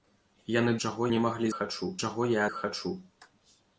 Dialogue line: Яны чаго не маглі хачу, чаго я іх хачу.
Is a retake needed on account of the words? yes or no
no